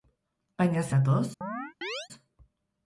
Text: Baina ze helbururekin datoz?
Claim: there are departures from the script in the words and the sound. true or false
true